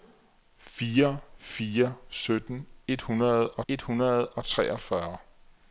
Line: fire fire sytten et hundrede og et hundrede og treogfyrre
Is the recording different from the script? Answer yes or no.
no